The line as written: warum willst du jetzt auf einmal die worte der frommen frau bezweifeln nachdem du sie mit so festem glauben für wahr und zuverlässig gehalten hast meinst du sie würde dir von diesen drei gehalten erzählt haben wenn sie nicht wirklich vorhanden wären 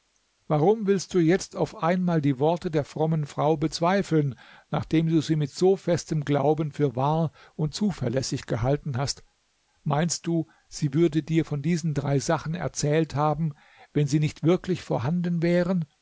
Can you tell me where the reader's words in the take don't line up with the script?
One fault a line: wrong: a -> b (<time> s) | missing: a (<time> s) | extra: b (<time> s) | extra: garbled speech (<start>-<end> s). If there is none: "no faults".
wrong: gehalten -> sachen (12.2 s)